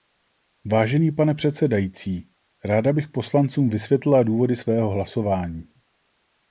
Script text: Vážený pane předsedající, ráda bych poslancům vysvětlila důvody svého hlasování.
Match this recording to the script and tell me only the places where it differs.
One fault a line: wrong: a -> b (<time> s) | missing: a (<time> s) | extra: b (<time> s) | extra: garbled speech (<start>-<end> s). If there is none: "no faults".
no faults